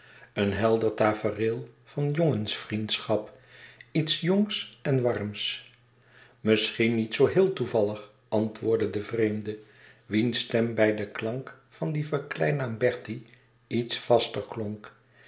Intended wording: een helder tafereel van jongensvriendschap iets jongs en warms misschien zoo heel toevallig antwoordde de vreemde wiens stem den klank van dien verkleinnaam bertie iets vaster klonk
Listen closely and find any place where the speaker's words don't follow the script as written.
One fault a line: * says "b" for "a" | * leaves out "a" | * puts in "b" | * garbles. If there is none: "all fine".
* puts in "niet"
* puts in "bij"